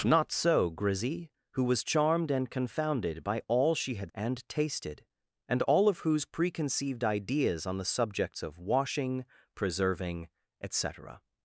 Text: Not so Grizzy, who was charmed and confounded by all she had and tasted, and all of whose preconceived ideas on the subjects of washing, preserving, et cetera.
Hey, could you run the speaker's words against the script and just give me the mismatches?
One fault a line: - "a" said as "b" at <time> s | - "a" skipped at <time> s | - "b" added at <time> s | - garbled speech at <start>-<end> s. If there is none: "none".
none